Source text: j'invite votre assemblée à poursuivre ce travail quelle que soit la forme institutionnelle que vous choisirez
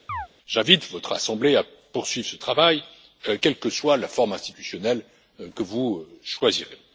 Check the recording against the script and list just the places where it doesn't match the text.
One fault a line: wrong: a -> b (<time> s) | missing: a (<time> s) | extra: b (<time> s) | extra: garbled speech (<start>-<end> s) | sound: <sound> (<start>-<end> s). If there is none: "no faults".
sound: chirp (0.1-0.3 s)